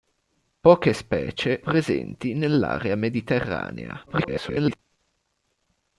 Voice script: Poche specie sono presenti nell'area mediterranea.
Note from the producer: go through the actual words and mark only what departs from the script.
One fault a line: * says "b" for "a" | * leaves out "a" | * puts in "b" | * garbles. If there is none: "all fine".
* leaves out "sono"
* garbles